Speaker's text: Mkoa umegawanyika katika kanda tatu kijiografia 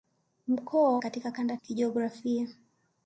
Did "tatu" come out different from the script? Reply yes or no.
yes